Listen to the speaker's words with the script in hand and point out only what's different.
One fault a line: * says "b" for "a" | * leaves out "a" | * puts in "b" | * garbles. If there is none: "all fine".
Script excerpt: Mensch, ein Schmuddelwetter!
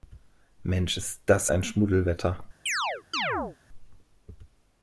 * puts in "ist das"